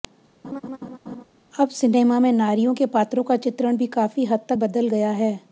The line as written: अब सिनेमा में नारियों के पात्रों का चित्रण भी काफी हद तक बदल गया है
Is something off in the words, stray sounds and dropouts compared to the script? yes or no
yes